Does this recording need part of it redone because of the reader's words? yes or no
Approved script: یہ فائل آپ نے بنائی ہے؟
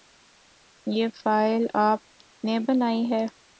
no